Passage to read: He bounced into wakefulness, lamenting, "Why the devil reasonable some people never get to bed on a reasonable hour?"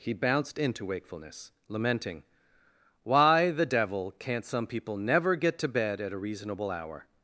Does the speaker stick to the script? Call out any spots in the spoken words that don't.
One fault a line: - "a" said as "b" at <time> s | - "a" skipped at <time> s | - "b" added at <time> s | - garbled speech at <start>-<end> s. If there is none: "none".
- "reasonable" said as "can't" at 4.1 s
- "on" said as "at" at 6.0 s